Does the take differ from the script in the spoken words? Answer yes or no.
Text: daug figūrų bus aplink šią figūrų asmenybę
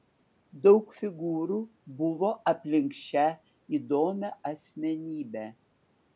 yes